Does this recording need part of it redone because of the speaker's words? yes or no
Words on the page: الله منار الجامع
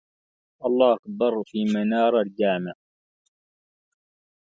yes